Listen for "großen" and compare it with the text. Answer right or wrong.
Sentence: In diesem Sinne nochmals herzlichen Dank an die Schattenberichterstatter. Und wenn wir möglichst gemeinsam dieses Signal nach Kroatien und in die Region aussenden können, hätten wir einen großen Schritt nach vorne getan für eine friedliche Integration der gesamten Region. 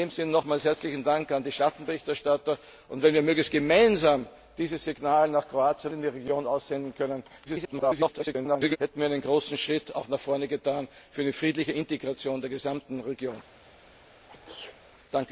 right